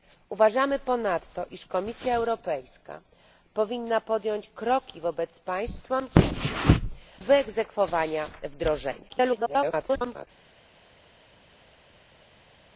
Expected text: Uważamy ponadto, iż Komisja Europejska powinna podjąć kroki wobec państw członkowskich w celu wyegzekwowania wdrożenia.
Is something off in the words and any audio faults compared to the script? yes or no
yes